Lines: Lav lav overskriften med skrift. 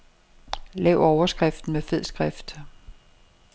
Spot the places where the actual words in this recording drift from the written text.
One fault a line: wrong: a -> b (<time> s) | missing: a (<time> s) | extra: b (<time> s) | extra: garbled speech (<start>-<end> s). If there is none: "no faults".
missing: lav (1.0 s)
extra: fed (1.8 s)